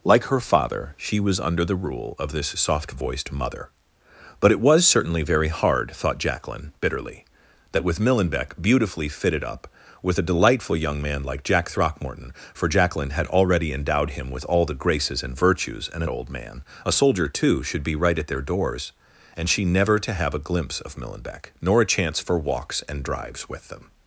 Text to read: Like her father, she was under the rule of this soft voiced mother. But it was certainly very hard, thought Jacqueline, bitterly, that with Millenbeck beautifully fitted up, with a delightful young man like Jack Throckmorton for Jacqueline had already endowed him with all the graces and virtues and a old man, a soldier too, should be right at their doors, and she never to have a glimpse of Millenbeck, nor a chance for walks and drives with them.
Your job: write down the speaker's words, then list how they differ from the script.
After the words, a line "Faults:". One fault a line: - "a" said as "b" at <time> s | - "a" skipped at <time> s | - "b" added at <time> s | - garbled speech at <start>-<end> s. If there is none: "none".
Like her father, she was under the rule of this soft voiced mother. But it was certainly very hard, thought Jacqueline, bitterly, that with Millenbeck beautifully fitted up, with a delightful young man like Jack Throckmorton for Jacqueline had already endowed him with all the graces and virtues and a old man, a soldier too, should be right at their doors, and she never to have a glimpse of Millenbeck, nor a chance for walks and drives with them.
Faults:
none